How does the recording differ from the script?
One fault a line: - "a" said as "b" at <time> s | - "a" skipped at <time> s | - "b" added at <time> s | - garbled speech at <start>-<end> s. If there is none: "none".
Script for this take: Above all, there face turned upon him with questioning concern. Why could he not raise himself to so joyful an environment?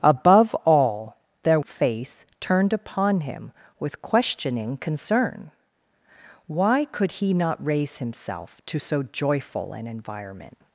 none